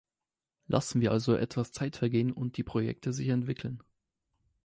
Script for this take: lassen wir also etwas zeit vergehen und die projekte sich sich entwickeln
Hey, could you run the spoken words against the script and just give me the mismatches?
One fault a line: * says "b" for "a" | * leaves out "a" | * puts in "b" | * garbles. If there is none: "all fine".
* leaves out "sich"